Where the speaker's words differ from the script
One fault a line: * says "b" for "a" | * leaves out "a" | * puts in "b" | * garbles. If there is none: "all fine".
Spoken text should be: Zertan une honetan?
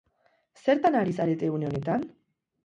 * puts in "ari zarete"